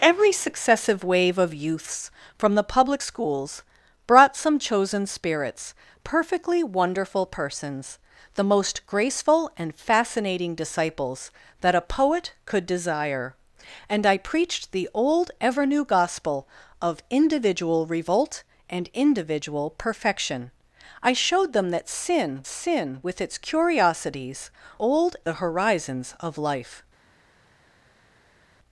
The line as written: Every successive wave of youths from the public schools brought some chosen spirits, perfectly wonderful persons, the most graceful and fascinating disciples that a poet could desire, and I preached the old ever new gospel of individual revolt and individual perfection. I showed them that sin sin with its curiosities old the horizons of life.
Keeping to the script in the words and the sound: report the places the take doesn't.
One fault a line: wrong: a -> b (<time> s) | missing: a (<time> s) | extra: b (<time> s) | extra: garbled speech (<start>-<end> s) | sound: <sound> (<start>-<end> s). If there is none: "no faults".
no faults